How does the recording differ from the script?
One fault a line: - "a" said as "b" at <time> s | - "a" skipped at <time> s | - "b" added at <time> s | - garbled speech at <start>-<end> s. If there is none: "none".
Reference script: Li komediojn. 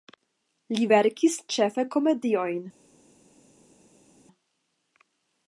- "verkis ĉefe" added at 0.9 s